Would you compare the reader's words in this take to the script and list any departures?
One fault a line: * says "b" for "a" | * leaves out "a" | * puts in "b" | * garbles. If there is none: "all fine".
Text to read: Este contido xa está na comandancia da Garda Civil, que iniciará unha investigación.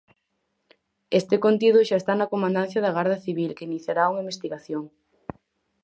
all fine